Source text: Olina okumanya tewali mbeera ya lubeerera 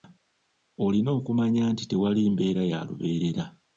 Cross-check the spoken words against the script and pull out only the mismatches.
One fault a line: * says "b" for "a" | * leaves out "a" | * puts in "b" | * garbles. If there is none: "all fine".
* puts in "nti"